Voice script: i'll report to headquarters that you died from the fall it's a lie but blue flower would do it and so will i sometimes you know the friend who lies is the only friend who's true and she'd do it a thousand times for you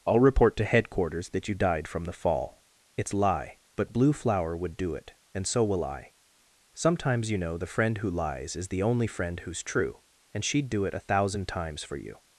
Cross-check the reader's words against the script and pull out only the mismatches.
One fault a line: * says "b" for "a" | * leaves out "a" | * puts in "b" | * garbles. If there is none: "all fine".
* leaves out "a"